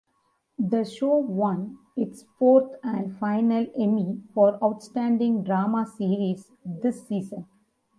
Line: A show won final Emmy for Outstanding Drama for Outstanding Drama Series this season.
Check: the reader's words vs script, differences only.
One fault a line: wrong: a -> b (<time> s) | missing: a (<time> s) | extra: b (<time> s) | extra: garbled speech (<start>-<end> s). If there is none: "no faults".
wrong: A -> The (0.6 s)
wrong: final Emmy for Outstanding Drama -> its fourth and final Emmy (1.9 s)